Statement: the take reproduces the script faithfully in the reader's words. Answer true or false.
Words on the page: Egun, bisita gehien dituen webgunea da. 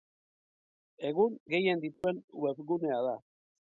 false